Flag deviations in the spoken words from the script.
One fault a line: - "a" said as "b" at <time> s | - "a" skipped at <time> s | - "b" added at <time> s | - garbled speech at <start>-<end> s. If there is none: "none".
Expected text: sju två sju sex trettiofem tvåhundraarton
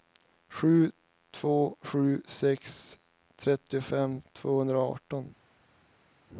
none